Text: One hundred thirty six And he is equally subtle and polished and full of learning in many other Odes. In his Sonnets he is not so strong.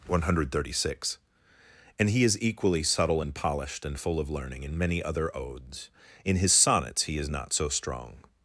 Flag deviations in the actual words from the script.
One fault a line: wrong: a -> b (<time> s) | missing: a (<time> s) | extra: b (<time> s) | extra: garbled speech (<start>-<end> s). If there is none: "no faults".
no faults